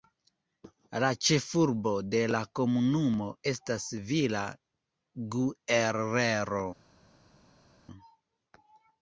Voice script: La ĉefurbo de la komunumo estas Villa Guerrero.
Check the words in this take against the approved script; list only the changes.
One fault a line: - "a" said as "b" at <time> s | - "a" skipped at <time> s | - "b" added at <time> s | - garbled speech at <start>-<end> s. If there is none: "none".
none